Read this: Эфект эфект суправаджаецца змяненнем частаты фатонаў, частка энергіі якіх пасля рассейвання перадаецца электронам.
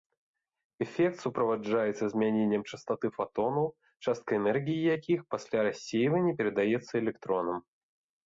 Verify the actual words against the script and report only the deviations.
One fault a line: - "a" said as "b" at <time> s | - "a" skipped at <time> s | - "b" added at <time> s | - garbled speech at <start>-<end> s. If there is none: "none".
- "эфект" skipped at 1.2 s